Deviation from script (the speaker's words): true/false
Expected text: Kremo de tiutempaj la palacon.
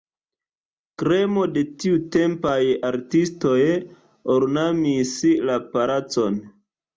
true